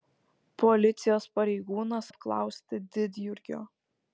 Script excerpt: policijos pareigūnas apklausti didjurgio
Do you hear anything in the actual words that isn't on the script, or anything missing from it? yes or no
no